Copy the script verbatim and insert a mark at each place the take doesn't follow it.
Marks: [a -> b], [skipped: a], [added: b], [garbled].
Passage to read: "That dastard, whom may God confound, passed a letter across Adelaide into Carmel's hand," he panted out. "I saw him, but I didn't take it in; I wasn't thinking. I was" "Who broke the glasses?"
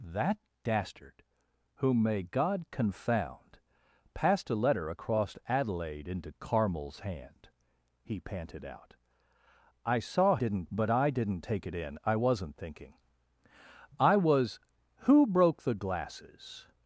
"That dastard, whom may God confound, passed a letter across Adelaide into Carmel's hand," he panted out. "I saw [him, -> didn't] but I didn't take it in; I wasn't thinking. I was" "Who broke the glasses?"